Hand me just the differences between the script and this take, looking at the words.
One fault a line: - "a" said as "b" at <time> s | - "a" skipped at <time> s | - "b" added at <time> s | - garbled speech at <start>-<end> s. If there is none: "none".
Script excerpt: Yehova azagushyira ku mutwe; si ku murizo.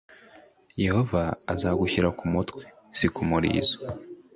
none